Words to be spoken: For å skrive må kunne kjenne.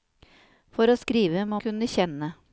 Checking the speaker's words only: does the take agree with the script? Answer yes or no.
yes